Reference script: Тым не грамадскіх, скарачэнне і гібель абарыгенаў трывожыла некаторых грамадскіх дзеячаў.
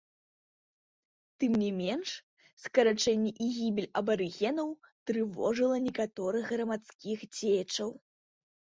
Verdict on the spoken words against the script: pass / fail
fail